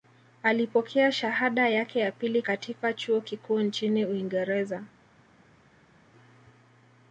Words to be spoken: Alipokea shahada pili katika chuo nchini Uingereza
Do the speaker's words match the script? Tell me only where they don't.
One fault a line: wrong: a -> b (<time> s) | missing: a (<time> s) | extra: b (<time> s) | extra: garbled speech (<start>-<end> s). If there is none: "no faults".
extra: yake ya (1.7 s)
extra: kikuu (3.2 s)